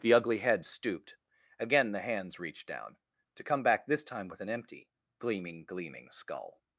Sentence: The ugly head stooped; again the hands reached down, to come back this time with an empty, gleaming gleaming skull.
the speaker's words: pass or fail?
pass